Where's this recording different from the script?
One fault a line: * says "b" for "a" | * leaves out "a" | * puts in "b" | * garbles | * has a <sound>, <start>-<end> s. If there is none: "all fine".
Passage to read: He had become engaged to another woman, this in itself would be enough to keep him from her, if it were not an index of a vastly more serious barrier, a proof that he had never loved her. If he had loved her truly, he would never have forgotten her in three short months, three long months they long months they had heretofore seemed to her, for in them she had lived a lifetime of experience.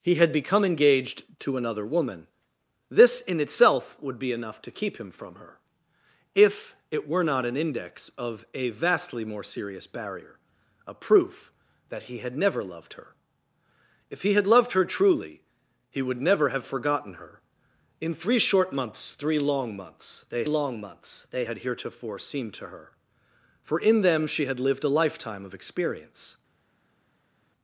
all fine